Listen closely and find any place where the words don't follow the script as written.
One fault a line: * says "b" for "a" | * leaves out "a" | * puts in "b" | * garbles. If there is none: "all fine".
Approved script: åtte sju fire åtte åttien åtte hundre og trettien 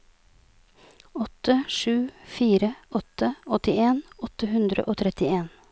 all fine